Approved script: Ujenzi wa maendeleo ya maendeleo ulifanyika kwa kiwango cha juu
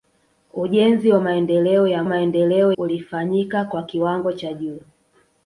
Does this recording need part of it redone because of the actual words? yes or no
no